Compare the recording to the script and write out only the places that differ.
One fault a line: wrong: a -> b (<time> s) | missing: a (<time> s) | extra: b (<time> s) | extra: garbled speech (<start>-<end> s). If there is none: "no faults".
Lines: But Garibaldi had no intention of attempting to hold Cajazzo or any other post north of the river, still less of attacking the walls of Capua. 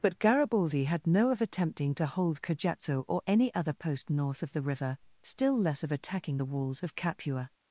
missing: intention (1.3 s)